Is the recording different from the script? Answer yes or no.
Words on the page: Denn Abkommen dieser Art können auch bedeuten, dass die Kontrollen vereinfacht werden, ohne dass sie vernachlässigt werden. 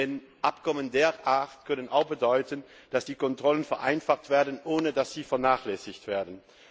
no